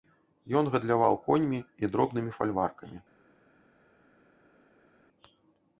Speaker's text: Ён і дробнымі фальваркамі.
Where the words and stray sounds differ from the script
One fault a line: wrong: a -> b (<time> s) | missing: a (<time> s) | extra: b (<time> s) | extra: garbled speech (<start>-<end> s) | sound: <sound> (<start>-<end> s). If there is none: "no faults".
extra: гандляваў коньмі (0.8 s)